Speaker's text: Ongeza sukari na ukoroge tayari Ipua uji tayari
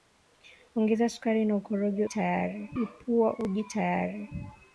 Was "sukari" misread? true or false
false